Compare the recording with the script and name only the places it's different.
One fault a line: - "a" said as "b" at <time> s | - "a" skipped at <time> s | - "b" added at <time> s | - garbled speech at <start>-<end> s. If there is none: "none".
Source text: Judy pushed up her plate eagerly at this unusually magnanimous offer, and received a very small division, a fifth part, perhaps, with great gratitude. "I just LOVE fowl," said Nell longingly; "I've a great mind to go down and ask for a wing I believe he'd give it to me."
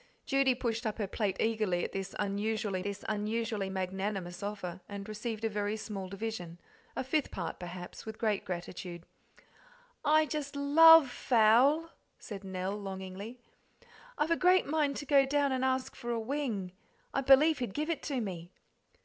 - "this unusually" added at 2.8 s